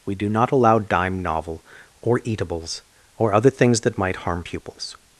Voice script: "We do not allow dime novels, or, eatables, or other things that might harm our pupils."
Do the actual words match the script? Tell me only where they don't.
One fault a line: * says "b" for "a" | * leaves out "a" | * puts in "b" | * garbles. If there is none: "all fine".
* says "novel" for "novels"
* leaves out "our"